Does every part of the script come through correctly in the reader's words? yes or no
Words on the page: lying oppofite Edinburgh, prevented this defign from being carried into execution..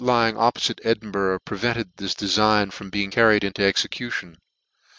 yes